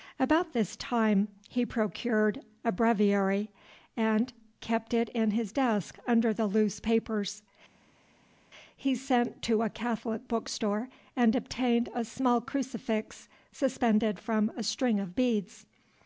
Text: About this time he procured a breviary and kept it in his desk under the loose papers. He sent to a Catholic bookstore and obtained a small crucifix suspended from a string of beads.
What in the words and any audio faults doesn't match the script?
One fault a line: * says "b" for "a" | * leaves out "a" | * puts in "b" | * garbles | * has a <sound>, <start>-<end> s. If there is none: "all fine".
all fine